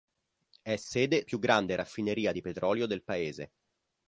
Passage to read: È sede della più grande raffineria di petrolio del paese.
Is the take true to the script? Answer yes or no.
no